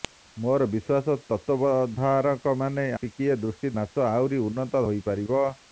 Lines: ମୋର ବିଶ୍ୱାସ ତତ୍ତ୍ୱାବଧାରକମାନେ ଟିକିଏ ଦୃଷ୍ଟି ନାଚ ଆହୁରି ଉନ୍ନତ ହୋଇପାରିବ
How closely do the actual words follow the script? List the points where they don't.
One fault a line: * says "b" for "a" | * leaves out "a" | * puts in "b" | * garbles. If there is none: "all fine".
all fine